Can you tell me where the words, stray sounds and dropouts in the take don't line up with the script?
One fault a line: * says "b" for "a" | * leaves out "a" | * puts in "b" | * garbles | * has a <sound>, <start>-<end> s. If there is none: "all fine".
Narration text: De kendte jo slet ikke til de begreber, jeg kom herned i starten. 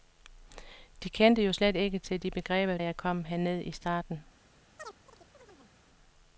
* has a chirp, 4.8-5.7 s